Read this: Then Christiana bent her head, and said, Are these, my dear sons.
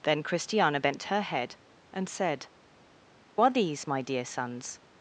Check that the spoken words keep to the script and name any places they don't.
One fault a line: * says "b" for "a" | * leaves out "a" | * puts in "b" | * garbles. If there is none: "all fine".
all fine